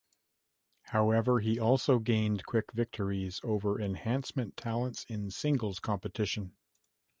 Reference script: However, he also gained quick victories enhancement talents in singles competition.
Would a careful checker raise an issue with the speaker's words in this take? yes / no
yes